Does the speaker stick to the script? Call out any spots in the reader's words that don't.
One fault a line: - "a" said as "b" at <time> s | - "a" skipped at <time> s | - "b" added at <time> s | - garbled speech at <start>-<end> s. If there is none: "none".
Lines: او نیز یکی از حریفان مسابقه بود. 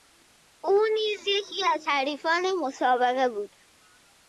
none